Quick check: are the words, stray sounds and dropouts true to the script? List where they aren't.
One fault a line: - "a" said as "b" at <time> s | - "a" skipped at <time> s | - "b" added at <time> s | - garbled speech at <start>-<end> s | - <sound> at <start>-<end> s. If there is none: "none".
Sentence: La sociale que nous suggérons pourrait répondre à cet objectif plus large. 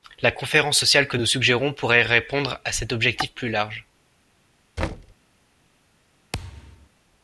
- "conférence" added at 0.3 s
- thud at 4.8-5.1 s
- thud at 6.3-6.9 s